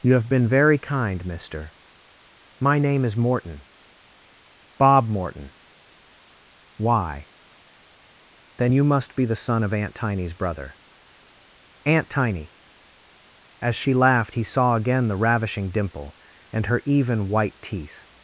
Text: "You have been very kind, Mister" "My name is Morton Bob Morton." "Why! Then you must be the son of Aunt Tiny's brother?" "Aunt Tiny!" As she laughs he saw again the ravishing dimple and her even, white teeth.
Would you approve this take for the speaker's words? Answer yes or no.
no